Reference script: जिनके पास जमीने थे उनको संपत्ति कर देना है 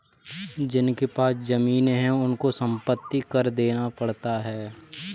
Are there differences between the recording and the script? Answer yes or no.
yes